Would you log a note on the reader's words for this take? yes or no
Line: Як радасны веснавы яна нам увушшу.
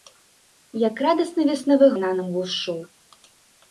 no